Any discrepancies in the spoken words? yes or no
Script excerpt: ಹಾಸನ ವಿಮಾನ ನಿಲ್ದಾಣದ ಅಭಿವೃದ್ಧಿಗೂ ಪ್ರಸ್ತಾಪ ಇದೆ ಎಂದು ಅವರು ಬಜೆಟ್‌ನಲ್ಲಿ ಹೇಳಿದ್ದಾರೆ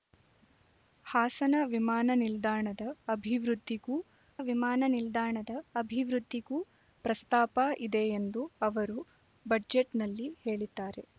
yes